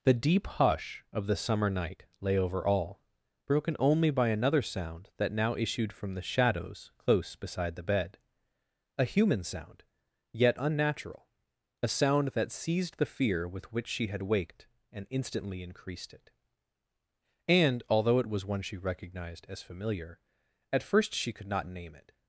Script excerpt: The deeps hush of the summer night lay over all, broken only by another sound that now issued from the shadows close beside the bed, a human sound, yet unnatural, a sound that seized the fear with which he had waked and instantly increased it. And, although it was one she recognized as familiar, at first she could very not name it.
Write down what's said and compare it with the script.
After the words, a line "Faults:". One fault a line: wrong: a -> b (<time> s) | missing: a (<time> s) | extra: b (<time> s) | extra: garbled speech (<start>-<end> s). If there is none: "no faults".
The deep hush of the summer night lay over all, broken only by another sound that now issued from the shadows close beside the bed, a human sound, yet unnatural, a sound that seized the fear with which she had waked and instantly increased it. And, although it was one she recognized as familiar, at first she could not name it.
Faults:
wrong: deeps -> deep (0.1 s)
wrong: he -> she (13.9 s)
missing: very (21.5 s)